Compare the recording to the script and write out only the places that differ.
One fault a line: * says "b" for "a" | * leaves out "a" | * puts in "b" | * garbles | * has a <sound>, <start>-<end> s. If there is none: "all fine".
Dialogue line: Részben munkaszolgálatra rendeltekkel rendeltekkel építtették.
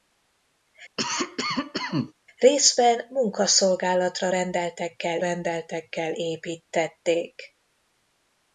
* has a cough, 1.0-2.1 s